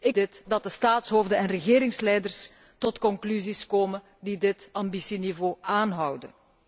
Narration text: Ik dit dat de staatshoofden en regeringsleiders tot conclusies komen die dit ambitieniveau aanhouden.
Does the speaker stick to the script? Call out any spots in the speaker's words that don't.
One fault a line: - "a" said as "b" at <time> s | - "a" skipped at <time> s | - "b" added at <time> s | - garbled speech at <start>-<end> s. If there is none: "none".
none